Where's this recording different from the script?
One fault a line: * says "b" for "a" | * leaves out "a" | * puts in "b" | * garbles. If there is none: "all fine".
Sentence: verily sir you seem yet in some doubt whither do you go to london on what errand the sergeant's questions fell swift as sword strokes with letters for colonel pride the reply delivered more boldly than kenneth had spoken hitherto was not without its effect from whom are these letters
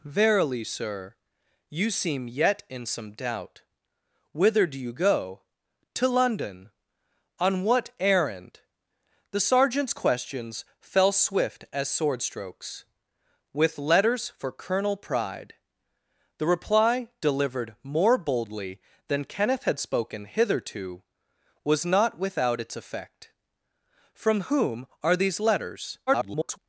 * garbles